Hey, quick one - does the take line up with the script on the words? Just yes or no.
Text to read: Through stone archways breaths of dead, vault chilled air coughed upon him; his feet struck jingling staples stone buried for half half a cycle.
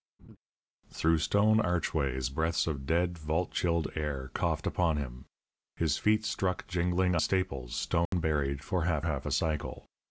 yes